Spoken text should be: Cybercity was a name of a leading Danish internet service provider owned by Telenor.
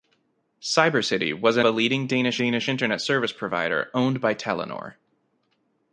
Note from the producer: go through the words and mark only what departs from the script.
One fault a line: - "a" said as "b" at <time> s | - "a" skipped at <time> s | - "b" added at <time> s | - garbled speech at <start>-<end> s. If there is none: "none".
- "name of" skipped at 1.6 s
- "Danish" added at 2.3 s